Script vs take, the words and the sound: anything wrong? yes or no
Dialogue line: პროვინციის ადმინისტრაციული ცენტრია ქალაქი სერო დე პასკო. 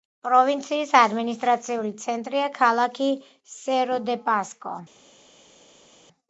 no